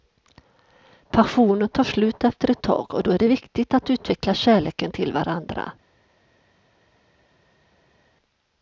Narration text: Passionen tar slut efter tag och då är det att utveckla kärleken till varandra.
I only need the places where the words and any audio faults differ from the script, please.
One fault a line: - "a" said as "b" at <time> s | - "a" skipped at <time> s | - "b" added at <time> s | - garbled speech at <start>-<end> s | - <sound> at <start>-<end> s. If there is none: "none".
- "ett" added at 2.5 s
- "viktigt" added at 3.3 s